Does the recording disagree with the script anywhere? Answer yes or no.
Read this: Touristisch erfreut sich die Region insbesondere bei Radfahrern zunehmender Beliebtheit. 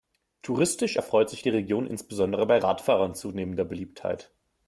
no